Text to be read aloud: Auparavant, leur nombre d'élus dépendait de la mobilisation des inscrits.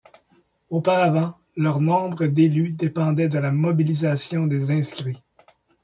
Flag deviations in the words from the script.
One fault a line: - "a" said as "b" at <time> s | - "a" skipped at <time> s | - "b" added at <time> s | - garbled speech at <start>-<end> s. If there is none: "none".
none